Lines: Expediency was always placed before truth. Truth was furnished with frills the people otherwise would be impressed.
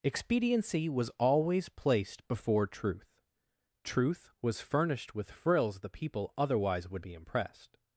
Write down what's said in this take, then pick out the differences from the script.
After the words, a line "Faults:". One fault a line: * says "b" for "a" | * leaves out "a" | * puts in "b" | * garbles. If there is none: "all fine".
Expediency was always placed before truth. Truth was furnished with frills the people otherwise would be impressed.
Faults:
all fine